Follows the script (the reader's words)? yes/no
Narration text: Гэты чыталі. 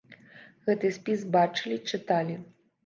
no